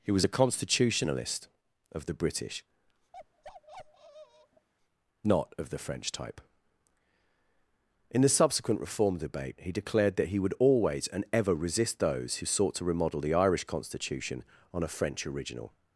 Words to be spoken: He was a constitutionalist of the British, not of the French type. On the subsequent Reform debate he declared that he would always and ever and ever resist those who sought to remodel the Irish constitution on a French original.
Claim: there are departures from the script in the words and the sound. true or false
true